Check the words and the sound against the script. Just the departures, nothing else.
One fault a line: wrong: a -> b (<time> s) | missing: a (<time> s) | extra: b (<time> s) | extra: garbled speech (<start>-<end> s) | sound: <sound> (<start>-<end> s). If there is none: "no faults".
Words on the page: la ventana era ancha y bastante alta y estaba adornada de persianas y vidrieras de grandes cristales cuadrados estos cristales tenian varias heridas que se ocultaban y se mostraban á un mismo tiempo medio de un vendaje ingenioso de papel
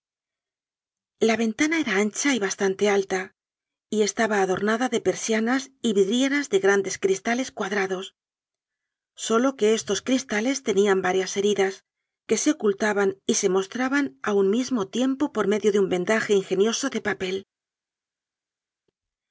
extra: solo que (9.2 s)
extra: por (15.3 s)